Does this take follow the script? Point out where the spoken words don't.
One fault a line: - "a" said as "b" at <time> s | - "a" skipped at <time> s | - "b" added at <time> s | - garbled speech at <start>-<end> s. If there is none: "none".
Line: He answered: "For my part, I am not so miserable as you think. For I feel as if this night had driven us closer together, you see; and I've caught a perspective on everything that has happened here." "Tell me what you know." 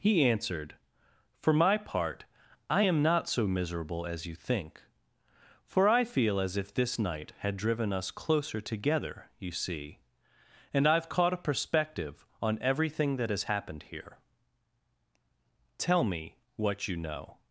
none